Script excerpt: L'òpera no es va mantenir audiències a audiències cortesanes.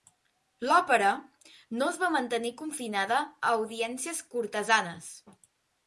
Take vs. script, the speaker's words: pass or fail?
fail